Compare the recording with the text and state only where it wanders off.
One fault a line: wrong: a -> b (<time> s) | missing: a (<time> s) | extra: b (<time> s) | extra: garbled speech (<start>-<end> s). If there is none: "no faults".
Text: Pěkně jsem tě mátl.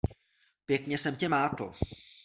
no faults